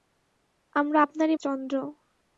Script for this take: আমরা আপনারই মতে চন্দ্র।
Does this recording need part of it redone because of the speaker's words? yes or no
yes